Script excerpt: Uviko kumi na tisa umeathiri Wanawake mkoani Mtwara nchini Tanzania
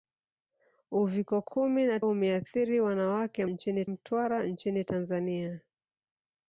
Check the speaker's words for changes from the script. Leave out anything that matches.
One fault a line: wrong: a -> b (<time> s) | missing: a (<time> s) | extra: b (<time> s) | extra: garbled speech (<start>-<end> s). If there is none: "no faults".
missing: tisa (2.0 s)
wrong: mkoani -> nchini (3.5 s)